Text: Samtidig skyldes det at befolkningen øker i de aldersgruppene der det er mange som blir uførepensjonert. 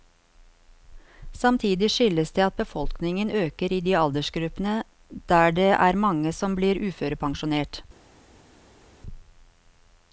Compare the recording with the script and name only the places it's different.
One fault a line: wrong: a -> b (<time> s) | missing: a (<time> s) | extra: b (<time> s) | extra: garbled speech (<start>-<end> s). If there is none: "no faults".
no faults